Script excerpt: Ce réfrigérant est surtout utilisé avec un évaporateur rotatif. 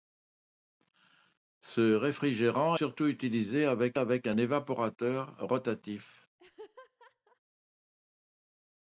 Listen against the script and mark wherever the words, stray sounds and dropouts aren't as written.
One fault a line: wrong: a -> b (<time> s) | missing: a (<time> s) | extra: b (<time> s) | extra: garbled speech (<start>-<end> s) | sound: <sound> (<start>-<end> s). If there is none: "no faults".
missing: est (2.8 s)
extra: avec (3.9 s)
sound: laugh (6.4-7.4 s)